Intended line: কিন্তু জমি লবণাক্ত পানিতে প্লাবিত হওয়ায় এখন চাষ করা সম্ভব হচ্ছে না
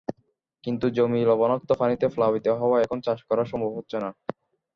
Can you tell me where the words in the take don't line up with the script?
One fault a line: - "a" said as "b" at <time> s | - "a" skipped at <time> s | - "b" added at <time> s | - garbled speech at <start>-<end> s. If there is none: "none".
none